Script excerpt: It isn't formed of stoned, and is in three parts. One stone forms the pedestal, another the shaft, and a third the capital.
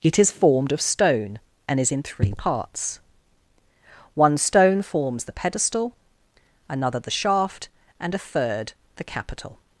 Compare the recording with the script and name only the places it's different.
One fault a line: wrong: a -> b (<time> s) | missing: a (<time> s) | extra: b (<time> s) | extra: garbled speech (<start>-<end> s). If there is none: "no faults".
wrong: isn't -> is (0.2 s)
wrong: stoned -> stone (0.8 s)